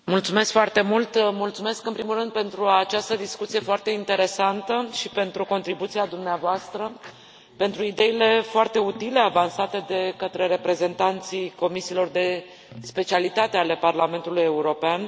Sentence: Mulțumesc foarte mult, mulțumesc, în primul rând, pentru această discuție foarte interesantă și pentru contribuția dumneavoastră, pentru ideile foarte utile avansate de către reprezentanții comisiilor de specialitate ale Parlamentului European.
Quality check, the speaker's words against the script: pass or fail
pass